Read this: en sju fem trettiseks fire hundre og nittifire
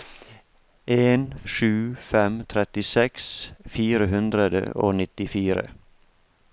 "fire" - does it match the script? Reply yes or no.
yes